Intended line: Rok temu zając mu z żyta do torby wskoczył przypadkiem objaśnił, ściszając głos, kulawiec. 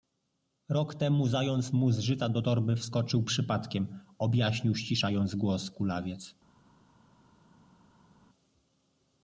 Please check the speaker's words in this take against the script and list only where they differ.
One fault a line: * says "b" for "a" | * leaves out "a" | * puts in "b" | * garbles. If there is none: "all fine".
all fine